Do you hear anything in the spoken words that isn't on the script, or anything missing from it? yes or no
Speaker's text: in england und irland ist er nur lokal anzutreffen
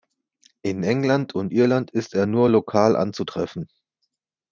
no